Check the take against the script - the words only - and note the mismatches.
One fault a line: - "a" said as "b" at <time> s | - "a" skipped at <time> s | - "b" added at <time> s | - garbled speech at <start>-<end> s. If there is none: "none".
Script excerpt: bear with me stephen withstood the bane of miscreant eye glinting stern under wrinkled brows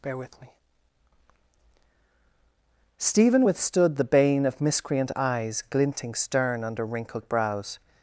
- "eye" said as "eyes" at 5.1 s